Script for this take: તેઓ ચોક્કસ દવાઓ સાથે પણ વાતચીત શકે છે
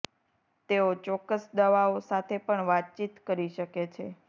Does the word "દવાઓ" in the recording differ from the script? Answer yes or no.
no